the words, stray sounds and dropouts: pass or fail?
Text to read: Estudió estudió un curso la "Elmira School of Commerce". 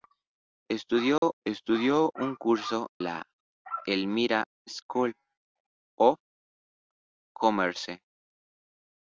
fail